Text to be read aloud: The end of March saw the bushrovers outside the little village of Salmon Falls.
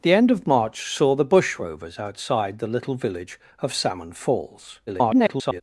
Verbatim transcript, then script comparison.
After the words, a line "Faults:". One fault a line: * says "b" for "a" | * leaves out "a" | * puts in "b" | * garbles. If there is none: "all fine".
The end of March saw the bushrovers outside the little village of Salmon Falls. [garbled]
Faults:
* garbles